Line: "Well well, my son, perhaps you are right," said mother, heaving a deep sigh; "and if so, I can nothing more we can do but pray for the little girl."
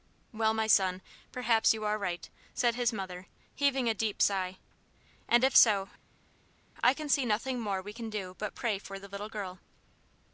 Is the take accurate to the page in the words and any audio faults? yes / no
no